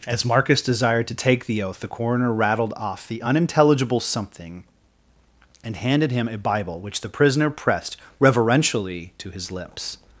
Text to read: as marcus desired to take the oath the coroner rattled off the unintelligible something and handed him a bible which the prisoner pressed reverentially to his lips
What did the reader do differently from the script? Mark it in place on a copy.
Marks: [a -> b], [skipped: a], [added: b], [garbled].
as marcus desired to take the oath the coroner rattled off the unintelligible something and handed him a bible which the prisoner pressed reverentially to his lips